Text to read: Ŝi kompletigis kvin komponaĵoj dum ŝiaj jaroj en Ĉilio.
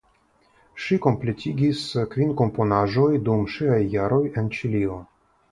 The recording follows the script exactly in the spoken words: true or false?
true